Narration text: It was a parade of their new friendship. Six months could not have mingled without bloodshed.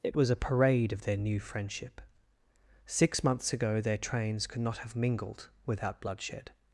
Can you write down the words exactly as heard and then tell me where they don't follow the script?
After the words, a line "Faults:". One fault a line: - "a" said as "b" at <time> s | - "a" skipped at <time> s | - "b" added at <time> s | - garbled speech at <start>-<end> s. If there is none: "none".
It was a parade of their new friendship. Six months ago their trains could not have mingled without bloodshed.
Faults:
- "ago their trains" added at 3.5 s